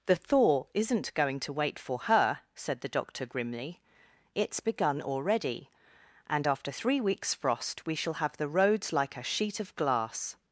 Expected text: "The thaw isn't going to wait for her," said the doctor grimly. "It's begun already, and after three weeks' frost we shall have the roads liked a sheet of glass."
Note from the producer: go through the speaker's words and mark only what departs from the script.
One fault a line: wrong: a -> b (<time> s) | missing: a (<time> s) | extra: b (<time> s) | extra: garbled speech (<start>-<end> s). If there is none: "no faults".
wrong: liked -> like (8.9 s)